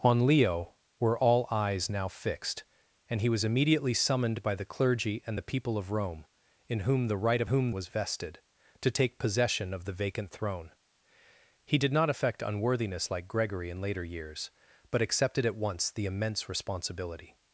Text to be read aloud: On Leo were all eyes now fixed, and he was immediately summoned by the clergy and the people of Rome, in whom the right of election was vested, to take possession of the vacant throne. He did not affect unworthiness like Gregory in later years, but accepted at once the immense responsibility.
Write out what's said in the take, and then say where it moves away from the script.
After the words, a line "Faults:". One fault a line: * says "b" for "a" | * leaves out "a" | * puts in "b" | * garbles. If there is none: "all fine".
On Leo were all eyes now fixed, and he was immediately summoned by the clergy and the people of Rome, in whom the right of whom was vested, to take possession of the vacant throne. He did not affect unworthiness like Gregory in later years, but accepted at once the immense responsibility.
Faults:
* says "whom" for "election"